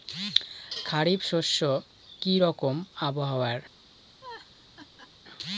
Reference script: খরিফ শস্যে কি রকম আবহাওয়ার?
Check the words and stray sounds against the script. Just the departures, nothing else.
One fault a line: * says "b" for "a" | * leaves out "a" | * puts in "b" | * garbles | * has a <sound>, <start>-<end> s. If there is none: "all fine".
* has a laugh, 4.2-5.1 s